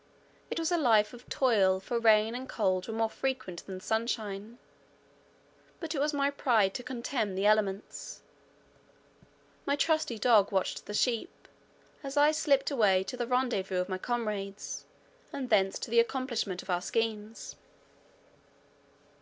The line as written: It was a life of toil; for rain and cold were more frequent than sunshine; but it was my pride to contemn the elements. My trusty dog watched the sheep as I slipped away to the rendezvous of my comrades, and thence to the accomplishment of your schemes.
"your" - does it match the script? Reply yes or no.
no